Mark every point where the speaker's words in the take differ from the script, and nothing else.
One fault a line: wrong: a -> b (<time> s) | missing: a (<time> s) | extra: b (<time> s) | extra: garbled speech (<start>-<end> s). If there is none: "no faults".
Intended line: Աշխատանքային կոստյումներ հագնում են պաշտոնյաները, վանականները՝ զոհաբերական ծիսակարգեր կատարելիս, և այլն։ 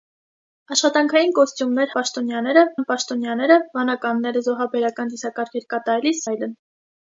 wrong: հագնում -> պաշտոնյաները (2.0 s)
missing: և (6.2 s)